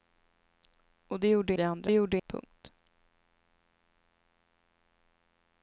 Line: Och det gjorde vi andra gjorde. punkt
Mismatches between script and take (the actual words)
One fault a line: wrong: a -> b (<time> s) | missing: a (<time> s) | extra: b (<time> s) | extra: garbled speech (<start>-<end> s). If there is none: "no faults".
no faults